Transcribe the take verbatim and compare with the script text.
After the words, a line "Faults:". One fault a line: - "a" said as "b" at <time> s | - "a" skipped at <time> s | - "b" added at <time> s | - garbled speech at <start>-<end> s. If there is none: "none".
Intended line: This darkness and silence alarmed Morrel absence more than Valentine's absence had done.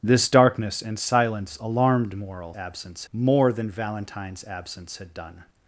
This darkness and silence alarmed Morrel absence more than Valentine's absence had done.
Faults:
none